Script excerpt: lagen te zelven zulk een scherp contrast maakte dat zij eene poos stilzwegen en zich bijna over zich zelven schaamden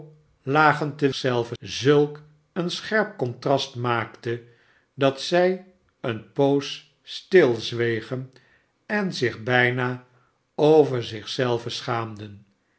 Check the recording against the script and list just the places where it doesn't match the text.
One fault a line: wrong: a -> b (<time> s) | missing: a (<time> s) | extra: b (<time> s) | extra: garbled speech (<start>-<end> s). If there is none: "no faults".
no faults